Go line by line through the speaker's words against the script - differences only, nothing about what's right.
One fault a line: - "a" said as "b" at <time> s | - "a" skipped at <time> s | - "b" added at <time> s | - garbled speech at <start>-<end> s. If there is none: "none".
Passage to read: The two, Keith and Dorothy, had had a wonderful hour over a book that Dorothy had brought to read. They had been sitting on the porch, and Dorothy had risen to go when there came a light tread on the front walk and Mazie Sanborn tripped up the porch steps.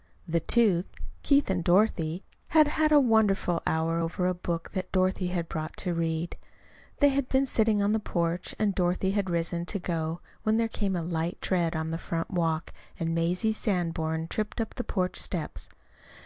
none